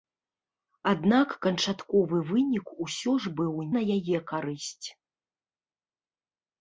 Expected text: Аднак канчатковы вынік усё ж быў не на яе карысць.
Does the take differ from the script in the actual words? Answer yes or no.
yes